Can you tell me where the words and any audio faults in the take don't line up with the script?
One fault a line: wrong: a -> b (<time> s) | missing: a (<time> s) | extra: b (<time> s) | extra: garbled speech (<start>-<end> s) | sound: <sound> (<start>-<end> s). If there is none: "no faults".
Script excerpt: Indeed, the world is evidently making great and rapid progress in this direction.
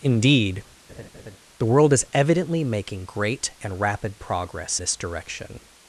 sound: laugh (0.9-1.4 s)
missing: in (4.8 s)